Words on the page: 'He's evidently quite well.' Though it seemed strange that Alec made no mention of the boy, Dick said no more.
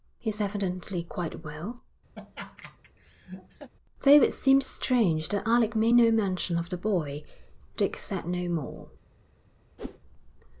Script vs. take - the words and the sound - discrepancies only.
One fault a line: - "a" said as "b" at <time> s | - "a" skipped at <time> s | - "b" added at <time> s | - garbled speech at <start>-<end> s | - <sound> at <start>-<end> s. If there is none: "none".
- laugh at 2.2-3.7 s
- whoosh at 9.8-10.0 s